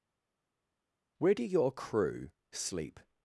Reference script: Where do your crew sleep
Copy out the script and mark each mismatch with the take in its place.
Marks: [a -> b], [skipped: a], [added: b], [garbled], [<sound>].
Where do your crew sleep